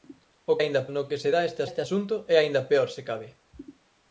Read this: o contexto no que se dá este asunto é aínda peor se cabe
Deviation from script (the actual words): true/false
true